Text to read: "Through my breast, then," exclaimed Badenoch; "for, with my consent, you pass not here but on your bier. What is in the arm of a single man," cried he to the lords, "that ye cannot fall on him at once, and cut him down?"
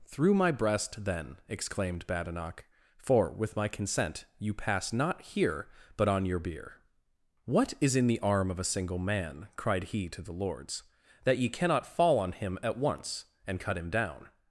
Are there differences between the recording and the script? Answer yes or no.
no